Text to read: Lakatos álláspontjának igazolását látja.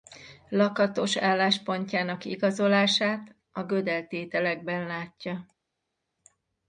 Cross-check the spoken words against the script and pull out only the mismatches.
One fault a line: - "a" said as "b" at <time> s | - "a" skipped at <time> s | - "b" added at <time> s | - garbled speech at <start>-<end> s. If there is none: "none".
- "a Gödel tételekben" added at 3.5 s